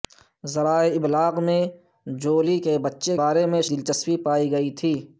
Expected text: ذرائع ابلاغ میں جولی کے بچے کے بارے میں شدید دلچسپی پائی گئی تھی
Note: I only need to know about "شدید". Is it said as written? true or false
false